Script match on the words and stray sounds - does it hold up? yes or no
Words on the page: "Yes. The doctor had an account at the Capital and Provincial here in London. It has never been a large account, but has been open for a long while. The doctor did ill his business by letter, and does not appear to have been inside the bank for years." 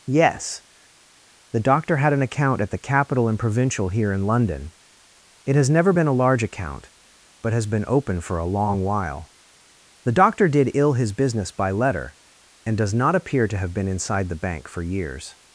yes